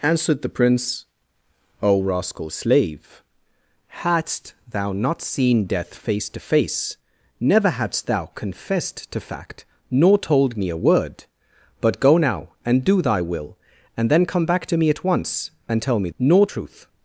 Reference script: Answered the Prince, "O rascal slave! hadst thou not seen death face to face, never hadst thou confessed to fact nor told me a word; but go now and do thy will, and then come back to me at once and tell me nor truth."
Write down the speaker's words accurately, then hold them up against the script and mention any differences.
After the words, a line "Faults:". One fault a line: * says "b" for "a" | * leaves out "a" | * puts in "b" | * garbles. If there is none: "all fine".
Answered the Prince, "O rascal slave! hadst thou not seen death face to face, never hadst thou confessed to fact nor told me a word; but go now and do thy will, and then come back to me at once and tell me nor truth."
Faults:
all fine